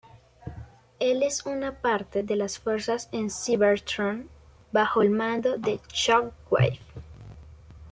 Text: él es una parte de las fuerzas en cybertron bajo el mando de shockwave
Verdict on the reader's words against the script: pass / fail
pass